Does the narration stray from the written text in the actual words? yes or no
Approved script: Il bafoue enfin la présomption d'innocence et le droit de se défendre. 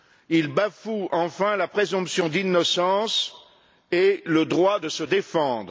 no